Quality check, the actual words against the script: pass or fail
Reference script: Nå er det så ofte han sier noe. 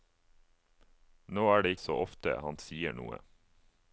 pass